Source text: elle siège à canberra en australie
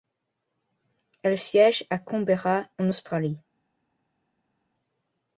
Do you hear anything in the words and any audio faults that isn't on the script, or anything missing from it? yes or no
no